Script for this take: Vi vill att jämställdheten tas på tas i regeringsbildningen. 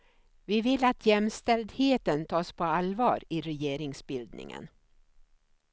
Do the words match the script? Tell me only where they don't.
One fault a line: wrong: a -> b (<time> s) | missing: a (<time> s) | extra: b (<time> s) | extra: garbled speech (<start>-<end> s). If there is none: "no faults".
wrong: tas -> allvar (2.6 s)